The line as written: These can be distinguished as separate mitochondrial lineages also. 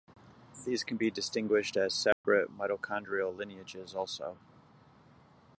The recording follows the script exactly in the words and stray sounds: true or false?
false